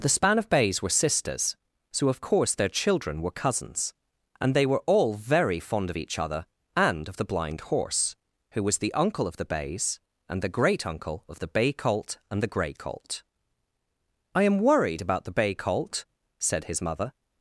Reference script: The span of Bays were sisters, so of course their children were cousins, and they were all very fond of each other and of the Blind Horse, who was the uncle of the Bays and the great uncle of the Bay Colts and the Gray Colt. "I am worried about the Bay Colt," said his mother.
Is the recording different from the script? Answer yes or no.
yes